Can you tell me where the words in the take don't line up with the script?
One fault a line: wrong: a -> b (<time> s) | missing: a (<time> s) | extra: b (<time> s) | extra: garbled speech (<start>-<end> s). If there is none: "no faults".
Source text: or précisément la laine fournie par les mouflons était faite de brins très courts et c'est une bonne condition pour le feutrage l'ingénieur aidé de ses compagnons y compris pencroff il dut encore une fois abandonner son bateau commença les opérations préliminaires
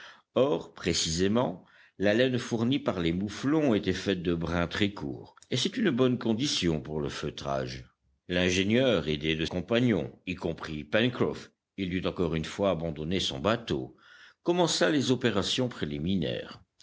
missing: ses (9.4 s)